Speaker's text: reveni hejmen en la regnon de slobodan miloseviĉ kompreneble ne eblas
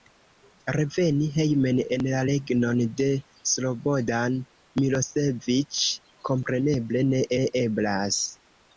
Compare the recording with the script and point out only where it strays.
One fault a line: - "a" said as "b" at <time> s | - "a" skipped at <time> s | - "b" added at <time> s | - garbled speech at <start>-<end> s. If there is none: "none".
- "ne" added at 7.4 s